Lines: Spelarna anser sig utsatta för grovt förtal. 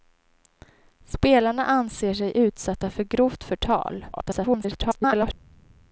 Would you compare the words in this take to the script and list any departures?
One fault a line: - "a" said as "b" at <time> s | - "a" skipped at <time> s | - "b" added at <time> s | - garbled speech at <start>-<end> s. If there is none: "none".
- garbled speech at 4.1-5.3 s